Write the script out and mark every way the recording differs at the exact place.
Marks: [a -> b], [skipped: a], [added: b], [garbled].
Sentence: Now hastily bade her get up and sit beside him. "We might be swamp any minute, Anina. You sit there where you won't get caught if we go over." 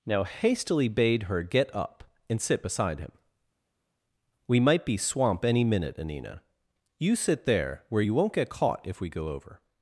Now hastily bade her get up and sit beside him. "We might be swamp any minute, Anina. You sit there where you won't get caught if we go over."